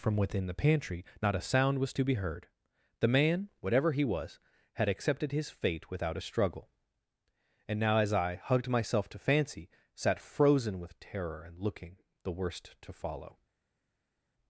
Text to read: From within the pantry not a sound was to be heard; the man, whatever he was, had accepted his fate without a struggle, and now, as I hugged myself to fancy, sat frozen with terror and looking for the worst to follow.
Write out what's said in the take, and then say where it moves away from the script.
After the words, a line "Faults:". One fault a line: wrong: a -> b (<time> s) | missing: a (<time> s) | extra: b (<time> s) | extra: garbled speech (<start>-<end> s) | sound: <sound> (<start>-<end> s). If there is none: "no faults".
From within the pantry not a sound was to be heard; the man, whatever he was, had accepted his fate without a struggle, and now, as I hugged myself to fancy, sat frozen with terror and looking the worst to follow.
Faults:
missing: for (12.0 s)